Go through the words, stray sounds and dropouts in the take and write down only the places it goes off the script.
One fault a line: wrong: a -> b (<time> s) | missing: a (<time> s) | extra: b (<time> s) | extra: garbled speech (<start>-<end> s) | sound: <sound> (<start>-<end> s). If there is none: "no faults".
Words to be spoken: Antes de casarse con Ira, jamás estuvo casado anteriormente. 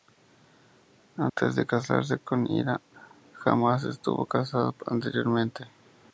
sound: dropout (1.3-1.4 s)